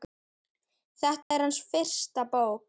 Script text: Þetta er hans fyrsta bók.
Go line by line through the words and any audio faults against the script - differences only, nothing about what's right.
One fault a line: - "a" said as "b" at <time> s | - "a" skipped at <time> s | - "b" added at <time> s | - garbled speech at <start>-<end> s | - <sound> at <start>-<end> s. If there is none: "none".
- dropout at 1.2-1.3 s